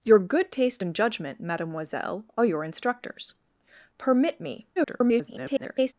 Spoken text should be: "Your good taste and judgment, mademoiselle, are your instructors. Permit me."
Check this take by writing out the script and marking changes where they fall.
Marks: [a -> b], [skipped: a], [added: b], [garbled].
"Your good taste and judgment, mademoiselle, are your instructors. Permit me." [garbled]